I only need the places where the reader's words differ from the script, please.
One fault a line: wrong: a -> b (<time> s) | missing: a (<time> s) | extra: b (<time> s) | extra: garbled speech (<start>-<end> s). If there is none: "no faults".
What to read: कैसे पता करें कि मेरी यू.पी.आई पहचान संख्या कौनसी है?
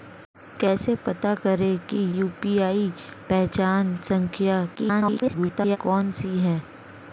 missing: मेरी (2.0 s)
extra: garbled speech (4.8-5.8 s)